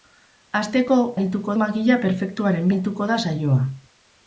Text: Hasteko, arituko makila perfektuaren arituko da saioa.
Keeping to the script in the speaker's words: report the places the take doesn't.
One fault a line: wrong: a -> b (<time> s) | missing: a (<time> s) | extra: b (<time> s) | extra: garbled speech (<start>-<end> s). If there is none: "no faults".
no faults